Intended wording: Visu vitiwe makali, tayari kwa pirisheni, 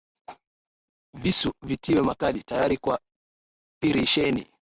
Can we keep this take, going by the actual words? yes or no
yes